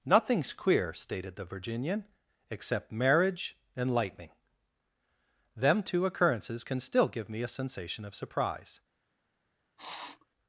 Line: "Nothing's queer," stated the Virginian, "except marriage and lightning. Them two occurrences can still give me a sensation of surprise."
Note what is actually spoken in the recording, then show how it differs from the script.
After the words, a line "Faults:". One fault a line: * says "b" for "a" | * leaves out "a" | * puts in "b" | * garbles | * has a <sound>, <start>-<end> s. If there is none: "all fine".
"Nothing's queer," stated the Virginian, "except marriage and lightning. Them two occurrences can still give me a sensation of surprise."
Faults:
* has a sniff, 9.8-10.3 s